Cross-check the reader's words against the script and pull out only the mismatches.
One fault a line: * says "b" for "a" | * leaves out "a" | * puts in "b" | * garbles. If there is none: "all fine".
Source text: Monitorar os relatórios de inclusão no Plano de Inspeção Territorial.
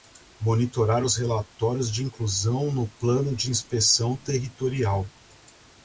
all fine